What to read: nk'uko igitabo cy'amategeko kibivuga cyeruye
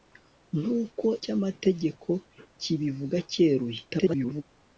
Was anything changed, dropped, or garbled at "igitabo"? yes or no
yes